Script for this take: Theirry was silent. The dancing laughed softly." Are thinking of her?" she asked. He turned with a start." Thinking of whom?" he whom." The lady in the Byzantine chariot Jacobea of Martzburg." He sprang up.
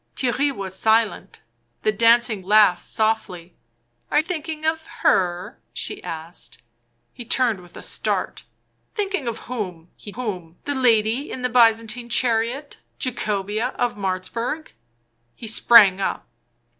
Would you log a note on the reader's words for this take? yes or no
no